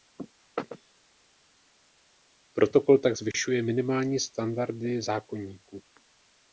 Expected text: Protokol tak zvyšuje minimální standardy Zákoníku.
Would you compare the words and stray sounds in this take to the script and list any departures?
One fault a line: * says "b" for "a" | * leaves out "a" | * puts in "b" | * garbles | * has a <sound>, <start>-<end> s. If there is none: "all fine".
all fine